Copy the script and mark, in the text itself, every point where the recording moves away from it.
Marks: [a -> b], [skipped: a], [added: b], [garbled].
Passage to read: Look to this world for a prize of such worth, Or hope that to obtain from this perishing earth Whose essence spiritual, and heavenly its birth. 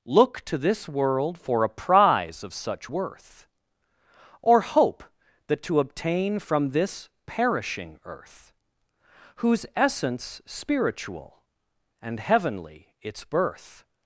Look to this world for a prize of such worth, Or hope that to obtain from this perishing earth Whose essence spiritual, and heavenly its birth.